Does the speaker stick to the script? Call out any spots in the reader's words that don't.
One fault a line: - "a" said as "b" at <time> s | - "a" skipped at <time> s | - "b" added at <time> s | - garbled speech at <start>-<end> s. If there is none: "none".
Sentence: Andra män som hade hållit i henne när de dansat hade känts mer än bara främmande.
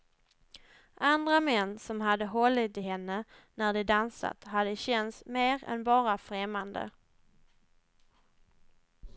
none